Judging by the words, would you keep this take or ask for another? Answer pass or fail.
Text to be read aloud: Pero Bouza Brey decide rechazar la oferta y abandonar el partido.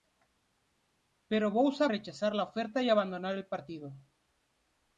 fail